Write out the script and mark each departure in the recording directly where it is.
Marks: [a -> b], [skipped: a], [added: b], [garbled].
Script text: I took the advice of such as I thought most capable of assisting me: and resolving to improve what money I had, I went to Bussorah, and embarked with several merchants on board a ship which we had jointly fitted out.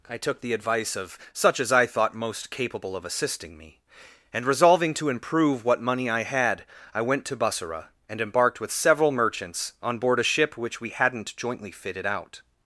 I took the advice of such as I thought most capable of assisting me: and resolving to improve what money I had, I went to Bussorah, and embarked with several merchants on board a ship which we [had -> hadn't] jointly fitted out.